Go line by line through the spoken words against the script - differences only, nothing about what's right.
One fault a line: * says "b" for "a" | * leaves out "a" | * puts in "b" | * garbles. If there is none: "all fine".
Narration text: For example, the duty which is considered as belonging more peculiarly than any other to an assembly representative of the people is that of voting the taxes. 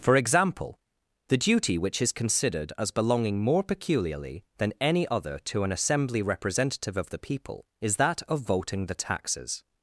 all fine